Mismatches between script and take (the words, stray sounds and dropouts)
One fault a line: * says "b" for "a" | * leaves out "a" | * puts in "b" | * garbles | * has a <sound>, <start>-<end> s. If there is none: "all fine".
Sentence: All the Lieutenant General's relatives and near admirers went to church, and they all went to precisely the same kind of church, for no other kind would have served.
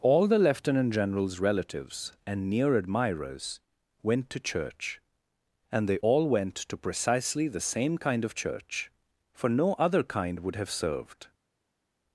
all fine